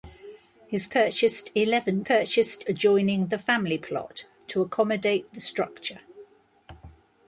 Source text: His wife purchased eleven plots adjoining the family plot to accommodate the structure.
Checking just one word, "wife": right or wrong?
wrong